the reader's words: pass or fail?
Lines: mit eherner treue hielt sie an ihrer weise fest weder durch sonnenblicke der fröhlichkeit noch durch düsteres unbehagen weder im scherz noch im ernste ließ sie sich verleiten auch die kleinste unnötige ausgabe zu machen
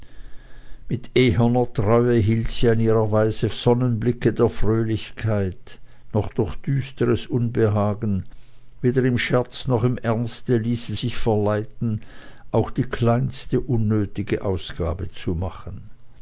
fail